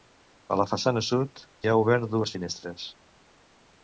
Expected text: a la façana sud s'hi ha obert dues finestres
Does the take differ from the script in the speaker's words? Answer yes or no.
yes